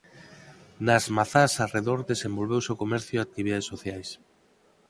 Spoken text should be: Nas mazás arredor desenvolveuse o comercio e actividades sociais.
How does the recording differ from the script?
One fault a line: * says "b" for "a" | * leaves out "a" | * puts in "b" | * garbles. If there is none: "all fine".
all fine